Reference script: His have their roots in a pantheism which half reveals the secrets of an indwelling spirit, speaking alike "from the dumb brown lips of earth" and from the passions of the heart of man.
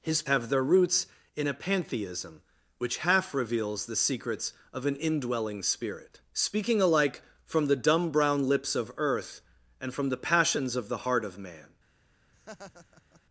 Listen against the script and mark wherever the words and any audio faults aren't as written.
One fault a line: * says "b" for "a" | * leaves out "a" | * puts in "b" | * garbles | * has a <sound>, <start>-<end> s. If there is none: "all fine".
* has a laugh, 12.3-13.2 s